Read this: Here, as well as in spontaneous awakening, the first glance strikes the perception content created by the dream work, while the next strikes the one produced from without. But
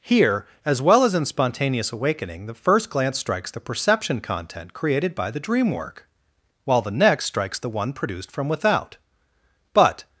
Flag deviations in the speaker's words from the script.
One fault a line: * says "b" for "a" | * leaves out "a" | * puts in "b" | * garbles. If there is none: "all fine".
all fine